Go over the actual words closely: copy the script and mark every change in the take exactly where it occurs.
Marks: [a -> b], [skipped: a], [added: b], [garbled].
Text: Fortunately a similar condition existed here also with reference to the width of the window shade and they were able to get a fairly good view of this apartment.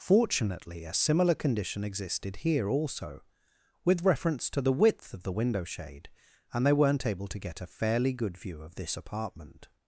Fortunately a similar condition existed here also with reference to the width of the window shade and they [were -> weren't] able to get a fairly good view of this apartment.